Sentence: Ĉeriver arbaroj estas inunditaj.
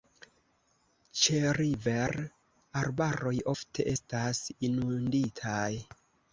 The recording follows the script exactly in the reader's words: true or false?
false